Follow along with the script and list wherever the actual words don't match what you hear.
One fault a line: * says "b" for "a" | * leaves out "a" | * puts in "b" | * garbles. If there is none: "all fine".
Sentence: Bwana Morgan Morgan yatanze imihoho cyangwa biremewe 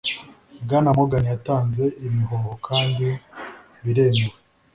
* leaves out "Morgan"
* says "kandi" for "cyangwa"